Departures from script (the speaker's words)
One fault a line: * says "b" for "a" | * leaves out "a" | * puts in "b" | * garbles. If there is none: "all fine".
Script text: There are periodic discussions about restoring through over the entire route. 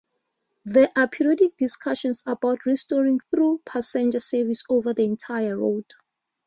* puts in "passenger service"